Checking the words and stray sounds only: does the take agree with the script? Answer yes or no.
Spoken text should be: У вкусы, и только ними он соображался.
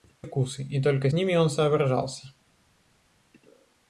yes